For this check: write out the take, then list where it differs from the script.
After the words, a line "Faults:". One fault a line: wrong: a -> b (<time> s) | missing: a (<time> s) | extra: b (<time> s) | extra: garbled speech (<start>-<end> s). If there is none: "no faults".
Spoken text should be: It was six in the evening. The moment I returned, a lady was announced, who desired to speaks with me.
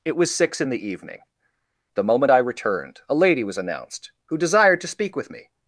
It was six in the evening. The moment I returned, a lady was announced, who desired to speak with me.
Faults:
wrong: speaks -> speak (4.9 s)